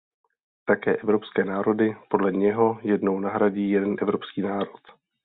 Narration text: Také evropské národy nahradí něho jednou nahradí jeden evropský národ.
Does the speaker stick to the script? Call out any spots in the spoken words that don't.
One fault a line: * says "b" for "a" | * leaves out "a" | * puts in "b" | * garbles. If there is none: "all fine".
* says "podle" for "nahradí"